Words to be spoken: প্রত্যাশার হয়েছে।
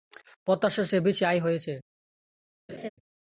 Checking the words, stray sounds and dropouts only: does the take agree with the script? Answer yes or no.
no